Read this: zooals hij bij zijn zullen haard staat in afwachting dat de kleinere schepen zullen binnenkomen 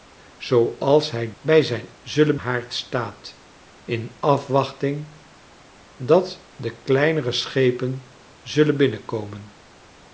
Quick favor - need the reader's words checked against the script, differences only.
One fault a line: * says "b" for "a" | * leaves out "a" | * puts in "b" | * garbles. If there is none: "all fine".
all fine